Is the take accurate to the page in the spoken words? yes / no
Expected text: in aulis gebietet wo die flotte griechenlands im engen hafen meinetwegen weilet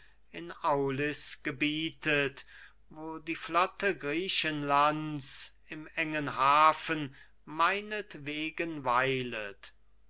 yes